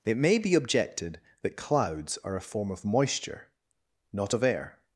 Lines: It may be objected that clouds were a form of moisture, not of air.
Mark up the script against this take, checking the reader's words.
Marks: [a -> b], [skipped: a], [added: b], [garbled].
It may be objected that clouds [were -> are] a form of moisture, not of air.